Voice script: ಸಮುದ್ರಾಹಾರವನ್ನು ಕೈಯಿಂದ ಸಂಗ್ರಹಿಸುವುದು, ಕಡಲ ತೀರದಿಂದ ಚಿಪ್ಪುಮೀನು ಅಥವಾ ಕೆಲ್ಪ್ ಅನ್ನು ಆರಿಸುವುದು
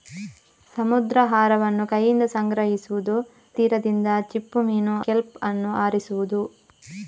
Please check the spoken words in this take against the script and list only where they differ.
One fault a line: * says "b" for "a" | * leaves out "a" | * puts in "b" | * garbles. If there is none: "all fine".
* leaves out "ಕಡಲ"
* leaves out "ಅಥವಾ"